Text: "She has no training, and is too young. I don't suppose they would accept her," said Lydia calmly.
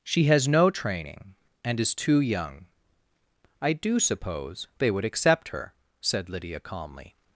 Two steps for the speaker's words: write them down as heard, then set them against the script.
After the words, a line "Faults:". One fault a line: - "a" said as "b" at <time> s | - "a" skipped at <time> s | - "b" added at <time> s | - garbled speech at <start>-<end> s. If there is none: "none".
"She has no training, and is too young. I do suppose they would accept her," said Lydia calmly.
Faults:
- "don't" said as "do" at 3.7 s